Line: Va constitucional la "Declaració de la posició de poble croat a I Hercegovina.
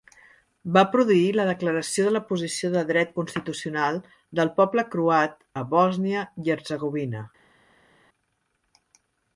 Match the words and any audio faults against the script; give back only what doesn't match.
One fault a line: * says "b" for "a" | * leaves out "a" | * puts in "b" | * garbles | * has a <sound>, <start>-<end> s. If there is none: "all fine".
* says "produir" for "constitucional"
* puts in "dret constitucional del"
* puts in "Bòsnia"